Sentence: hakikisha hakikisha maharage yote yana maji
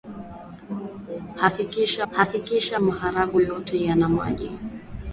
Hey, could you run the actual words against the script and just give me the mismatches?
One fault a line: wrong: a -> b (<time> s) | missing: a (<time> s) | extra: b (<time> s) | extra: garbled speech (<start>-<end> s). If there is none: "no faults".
no faults